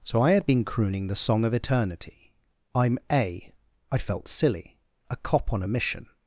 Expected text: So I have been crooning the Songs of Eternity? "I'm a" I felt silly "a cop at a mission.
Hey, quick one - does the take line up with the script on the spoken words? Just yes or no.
no